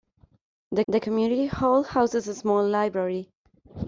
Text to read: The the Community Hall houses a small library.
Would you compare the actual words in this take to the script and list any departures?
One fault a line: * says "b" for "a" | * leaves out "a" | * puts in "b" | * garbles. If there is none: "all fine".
all fine